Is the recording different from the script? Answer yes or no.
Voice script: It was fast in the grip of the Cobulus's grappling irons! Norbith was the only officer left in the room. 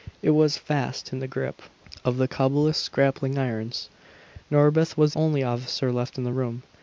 yes